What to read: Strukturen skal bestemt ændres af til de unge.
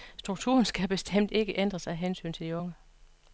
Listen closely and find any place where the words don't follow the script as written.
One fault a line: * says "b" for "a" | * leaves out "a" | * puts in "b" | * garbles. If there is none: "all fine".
* puts in "ikke"
* puts in "hensyn"